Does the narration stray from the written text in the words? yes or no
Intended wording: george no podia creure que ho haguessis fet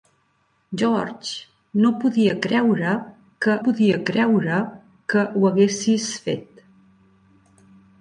yes